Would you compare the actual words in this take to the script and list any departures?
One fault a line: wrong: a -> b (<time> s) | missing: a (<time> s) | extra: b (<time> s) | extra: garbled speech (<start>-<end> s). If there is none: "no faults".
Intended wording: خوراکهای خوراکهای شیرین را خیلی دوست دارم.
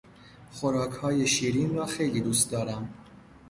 missing: خوراکهای (1.3 s)